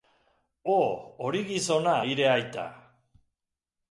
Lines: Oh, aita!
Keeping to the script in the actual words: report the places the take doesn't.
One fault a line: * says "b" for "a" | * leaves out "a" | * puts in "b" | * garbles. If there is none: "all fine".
* puts in "hori gizona hire"